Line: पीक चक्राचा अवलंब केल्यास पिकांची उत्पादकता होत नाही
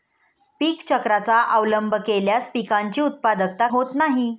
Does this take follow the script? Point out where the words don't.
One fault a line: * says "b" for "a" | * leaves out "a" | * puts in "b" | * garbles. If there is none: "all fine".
all fine